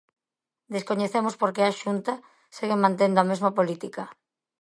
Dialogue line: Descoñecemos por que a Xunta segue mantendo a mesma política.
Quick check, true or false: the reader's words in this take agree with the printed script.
true